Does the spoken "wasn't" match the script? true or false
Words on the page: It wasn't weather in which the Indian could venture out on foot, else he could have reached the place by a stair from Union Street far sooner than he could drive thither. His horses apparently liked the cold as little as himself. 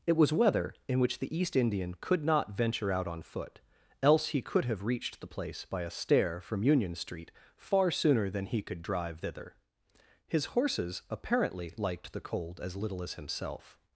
false